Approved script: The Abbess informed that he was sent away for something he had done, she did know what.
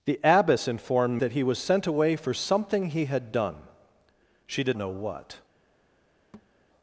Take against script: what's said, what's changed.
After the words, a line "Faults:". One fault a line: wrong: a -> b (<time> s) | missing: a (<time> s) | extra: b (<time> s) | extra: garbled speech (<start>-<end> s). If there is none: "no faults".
The Abbess informed that he was sent away for something he had done, she did know what.
Faults:
no faults